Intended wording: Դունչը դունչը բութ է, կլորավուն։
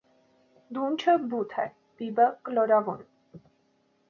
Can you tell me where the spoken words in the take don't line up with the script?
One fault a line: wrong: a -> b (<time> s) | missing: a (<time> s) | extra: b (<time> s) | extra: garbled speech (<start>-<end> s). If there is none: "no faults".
missing: դունչը (1.1 s)
extra: բիբը (2.0 s)